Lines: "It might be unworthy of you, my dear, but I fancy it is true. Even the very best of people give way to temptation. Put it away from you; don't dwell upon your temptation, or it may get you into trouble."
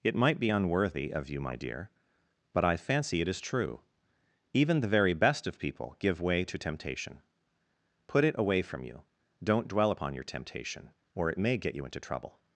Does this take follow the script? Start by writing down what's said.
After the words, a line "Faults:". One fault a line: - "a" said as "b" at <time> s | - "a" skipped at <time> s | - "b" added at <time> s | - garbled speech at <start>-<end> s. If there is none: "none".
"It might be unworthy of you, my dear, but I fancy it is true. Even the very best of people give way to temptation. Put it away from you; don't dwell upon your temptation, or it may get you into trouble."
Faults:
none